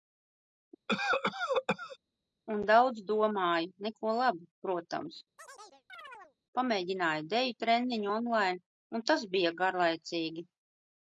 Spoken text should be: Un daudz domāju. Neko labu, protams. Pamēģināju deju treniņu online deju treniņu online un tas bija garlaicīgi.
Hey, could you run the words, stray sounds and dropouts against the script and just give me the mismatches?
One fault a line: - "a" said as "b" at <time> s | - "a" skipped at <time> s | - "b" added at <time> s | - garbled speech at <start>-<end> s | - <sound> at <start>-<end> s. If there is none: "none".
- cough at 0.9-2.0 s
- chirp at 5.4-6.4 s
- "deju treniņu online" skipped at 9.0 s